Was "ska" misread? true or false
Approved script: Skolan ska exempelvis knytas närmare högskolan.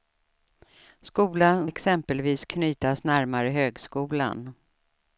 true